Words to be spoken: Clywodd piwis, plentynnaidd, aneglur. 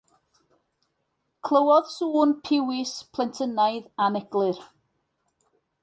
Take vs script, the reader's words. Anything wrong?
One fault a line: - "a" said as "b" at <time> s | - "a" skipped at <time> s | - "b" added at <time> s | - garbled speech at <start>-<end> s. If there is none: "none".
- "sŵn" added at 2.0 s